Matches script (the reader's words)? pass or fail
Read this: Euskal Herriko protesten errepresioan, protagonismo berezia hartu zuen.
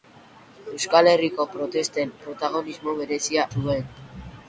fail